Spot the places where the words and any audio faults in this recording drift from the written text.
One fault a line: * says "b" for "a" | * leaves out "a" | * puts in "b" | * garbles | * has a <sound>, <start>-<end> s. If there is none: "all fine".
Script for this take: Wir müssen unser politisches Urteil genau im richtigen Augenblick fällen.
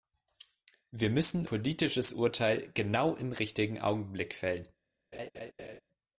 * leaves out "unser"
* has a laugh, 5.1-5.8 s